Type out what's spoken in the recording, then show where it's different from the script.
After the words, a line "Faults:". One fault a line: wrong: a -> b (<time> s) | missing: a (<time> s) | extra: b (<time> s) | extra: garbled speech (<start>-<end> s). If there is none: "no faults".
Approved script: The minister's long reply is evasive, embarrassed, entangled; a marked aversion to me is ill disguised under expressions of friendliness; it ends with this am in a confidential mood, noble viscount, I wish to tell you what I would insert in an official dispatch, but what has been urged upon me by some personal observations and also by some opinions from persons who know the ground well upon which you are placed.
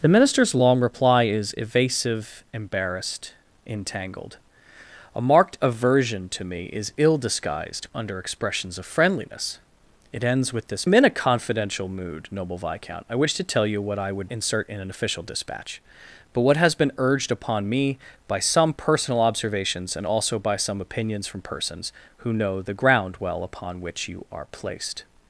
The minister's long reply is evasive, embarrassed, entangled; a marked aversion to me is ill disguised under expressions of friendliness; it ends with this am in a confidential mood, noble viscount, I wish to tell you what I would insert in an official dispatch, but what has been urged upon me by some personal observations and also by some opinions from persons who know the ground well upon which you are placed.
Faults:
no faults